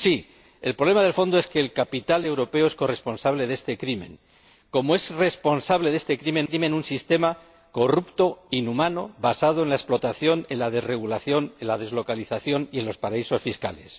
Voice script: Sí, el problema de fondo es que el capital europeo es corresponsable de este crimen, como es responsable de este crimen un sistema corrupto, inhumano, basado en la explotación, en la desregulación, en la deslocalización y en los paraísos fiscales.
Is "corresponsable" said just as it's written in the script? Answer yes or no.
yes